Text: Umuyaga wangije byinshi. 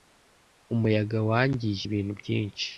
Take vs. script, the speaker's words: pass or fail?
fail